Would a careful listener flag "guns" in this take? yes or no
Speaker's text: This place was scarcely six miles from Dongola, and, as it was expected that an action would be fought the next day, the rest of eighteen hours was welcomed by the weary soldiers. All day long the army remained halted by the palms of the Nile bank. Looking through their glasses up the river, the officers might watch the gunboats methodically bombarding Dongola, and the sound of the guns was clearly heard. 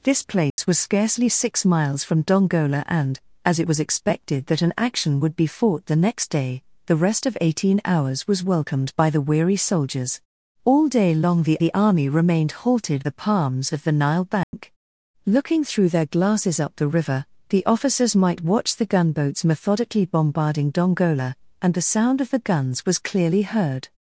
no